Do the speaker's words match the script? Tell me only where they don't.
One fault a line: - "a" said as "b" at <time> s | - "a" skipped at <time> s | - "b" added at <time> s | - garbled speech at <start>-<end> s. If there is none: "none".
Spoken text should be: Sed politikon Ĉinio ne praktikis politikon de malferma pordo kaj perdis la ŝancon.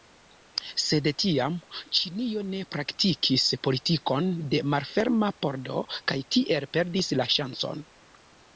- "politikon" said as "tiam" at 1.2 s
- "tiel" added at 6.4 s